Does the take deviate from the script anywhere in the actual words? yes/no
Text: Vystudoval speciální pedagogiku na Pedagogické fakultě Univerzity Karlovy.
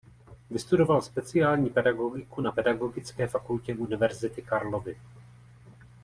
no